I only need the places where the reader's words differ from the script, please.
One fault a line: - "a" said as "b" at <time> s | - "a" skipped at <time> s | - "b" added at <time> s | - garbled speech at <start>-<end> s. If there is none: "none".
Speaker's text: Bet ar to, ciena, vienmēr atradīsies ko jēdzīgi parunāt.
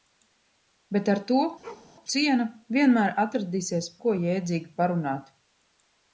none